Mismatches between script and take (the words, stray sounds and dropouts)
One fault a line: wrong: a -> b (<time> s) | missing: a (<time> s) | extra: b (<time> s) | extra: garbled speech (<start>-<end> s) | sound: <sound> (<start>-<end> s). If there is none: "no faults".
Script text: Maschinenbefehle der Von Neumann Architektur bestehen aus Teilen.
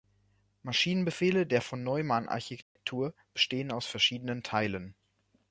sound: dropout (2.6-2.8 s)
extra: verschiedenen (3.9 s)